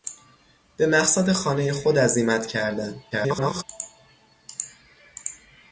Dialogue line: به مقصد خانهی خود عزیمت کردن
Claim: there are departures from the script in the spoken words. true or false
true